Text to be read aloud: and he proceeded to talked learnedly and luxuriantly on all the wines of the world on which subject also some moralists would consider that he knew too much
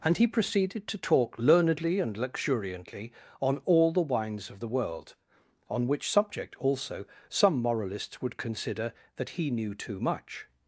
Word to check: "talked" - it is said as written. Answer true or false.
false